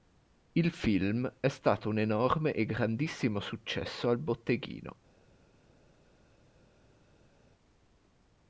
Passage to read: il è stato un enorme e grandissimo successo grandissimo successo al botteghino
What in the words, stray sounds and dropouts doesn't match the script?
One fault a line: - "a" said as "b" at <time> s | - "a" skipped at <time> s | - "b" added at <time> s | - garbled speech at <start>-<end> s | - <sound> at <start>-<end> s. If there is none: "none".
- "film" added at 0.7 s
- "grandissimo successo" skipped at 4.1 s